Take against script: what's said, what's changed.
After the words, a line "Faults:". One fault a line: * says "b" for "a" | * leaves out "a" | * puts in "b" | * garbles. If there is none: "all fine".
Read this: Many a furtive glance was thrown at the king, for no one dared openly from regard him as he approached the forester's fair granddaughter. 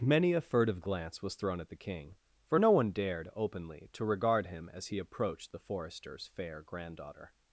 Many a furtive glance was thrown at the king, for no one dared openly to regard him as he approached the forester's fair granddaughter.
Faults:
* says "to" for "from"